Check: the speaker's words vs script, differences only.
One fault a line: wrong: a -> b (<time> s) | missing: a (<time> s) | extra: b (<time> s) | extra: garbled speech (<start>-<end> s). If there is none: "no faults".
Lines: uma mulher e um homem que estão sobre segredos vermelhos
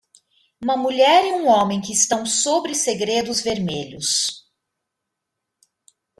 no faults